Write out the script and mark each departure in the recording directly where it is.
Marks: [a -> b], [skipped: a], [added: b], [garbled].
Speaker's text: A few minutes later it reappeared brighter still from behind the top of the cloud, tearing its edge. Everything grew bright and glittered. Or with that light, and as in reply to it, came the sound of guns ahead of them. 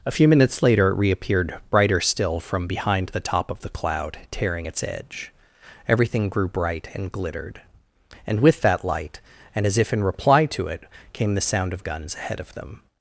A few minutes later it reappeared brighter still from behind the top of the cloud, tearing its edge. Everything grew bright and glittered. [Or -> And] with that light, and as [added: if] in reply to it, came the sound of guns ahead of them.